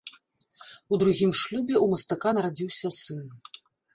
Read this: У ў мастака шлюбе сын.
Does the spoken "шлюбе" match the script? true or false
false